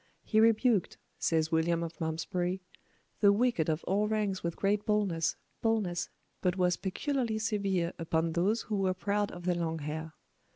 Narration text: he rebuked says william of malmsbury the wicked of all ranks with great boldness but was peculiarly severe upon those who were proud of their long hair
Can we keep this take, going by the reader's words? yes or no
no